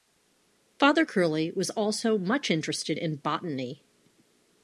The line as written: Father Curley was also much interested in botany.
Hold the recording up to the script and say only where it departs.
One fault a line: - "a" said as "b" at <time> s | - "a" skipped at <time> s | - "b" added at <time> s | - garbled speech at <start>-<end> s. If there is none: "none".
none